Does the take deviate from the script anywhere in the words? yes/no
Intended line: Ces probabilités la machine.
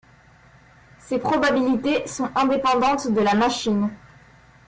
yes